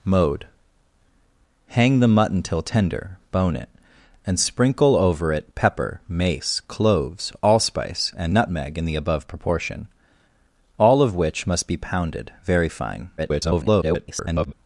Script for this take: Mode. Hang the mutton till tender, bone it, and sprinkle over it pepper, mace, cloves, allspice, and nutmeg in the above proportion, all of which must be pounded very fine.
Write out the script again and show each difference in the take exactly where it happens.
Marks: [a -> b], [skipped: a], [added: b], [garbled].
Mode. Hang the mutton till tender, bone it, and sprinkle over it pepper, mace, cloves, allspice, and nutmeg in the above proportion, all of which must be pounded very fine. [garbled]